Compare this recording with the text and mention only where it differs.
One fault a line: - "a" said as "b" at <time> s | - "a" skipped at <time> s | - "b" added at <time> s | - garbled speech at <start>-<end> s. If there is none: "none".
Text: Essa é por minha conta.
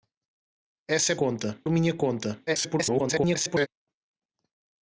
- "por" said as "conta" at 1.1 s
- garbled speech at 2.5-3.7 s